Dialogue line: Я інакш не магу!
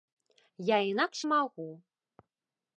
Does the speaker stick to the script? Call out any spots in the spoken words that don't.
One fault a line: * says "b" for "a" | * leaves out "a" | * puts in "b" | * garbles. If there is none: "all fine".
* leaves out "не"